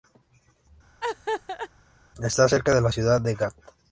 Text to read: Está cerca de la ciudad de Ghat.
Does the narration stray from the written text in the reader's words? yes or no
no